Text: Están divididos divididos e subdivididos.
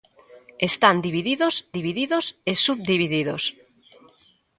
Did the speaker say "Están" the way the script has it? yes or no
yes